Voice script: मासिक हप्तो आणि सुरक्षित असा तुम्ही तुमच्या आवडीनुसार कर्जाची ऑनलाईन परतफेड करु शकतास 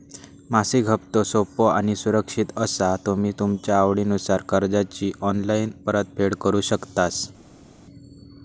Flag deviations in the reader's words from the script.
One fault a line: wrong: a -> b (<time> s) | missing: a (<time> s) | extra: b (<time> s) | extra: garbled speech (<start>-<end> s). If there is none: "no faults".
extra: सोपो (1.2 s)